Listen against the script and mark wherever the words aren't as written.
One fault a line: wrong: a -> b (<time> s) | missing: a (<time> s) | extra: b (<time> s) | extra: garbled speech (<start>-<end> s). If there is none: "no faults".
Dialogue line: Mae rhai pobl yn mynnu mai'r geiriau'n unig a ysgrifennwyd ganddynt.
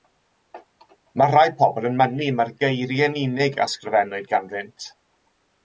no faults